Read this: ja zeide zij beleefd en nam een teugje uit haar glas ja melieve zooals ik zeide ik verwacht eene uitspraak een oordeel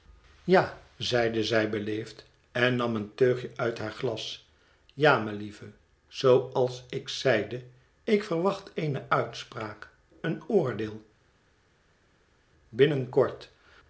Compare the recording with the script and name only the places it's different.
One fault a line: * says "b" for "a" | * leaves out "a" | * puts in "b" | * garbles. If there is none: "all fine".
all fine